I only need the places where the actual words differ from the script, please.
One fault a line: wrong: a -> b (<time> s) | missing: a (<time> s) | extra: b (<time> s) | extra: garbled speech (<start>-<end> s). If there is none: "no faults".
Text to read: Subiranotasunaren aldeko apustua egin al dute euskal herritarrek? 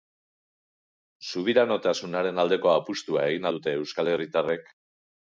missing: al (3.5 s)